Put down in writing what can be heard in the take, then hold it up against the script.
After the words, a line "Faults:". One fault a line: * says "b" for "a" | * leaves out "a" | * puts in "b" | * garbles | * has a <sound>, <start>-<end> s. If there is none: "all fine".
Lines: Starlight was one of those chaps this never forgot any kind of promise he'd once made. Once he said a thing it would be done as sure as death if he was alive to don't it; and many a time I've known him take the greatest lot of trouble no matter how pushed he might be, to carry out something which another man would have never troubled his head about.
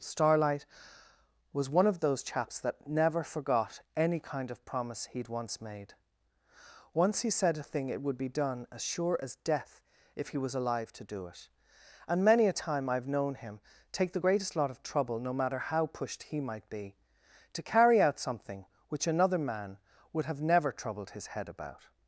Starlight was one of those chaps that never forgot any kind of promise he'd once made. Once he said a thing it would be done as sure as death if he was alive to do it; and many a time I've known him take the greatest lot of trouble no matter how pushed he might be, to carry out something which another man would have never troubled his head about.
Faults:
* says "that" for "this"
* says "do" for "don't"